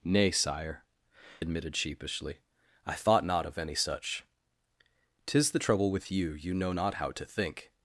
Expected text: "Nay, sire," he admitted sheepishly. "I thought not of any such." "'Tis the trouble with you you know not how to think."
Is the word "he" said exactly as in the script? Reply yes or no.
no